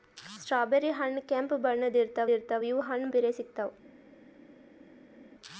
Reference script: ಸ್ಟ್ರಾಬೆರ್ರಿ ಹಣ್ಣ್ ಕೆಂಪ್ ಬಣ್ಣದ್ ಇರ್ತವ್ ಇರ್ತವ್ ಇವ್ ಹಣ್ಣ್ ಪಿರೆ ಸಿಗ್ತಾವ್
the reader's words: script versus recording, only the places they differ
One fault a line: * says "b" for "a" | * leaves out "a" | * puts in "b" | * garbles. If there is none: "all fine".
all fine